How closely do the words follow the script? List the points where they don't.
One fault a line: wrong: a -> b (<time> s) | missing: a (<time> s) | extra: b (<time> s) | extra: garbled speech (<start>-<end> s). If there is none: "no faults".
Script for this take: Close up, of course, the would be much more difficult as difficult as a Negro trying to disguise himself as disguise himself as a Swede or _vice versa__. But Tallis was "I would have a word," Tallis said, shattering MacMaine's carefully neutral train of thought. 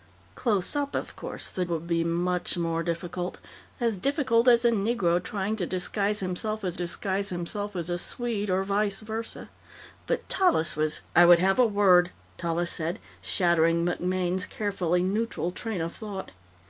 no faults